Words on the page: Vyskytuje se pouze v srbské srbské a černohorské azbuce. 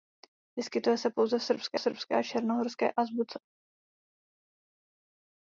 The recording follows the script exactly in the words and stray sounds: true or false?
true